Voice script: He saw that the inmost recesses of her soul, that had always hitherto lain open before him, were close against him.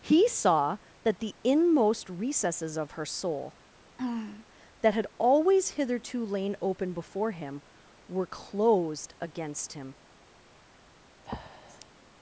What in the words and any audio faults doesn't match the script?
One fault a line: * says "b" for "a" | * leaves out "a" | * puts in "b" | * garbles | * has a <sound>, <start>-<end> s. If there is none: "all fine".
* has a throat clearing, 4.0-4.5 s
* says "closed" for "close"
* has a breath, 11.2-11.9 s